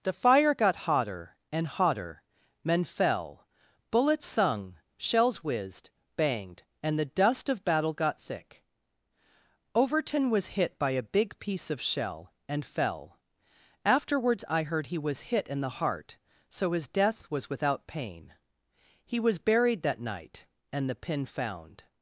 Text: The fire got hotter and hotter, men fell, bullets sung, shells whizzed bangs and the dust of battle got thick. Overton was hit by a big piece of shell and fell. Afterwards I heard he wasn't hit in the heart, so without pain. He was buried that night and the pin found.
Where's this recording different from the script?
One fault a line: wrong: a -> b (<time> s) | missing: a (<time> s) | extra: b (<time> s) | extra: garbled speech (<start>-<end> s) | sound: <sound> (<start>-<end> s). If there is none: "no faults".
wrong: bangs -> banged (6.2 s)
wrong: wasn't -> was (15.0 s)
extra: his death was (16.7 s)